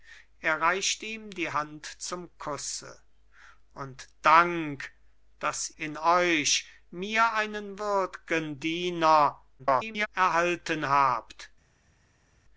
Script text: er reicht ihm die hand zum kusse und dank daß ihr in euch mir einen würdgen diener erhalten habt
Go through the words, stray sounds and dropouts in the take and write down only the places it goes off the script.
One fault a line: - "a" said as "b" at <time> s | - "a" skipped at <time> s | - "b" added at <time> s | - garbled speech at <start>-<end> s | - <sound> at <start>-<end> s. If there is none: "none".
- "ihr" skipped at 5.7 s
- garbled speech at 9.6-10.1 s